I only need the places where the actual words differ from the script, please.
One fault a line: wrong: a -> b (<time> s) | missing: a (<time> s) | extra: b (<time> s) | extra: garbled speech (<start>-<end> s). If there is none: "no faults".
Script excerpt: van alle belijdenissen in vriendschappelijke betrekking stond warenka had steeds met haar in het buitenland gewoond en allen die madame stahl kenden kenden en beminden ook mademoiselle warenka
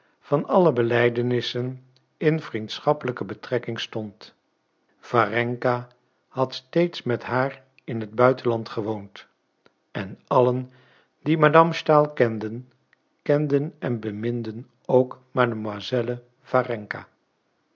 no faults